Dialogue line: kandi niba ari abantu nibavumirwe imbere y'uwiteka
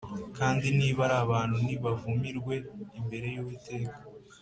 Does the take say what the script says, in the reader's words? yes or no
yes